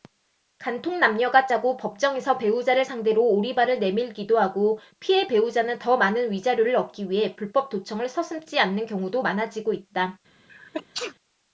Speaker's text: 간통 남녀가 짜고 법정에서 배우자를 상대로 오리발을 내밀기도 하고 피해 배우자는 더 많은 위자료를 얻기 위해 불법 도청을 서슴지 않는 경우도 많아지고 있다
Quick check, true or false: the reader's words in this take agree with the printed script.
true